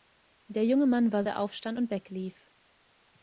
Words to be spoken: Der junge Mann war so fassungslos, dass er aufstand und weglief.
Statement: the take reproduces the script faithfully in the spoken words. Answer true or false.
false